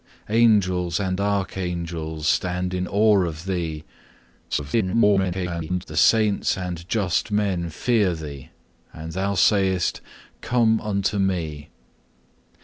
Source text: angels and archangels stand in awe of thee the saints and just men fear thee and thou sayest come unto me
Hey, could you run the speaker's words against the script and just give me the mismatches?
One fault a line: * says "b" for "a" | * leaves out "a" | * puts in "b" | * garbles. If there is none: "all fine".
* garbles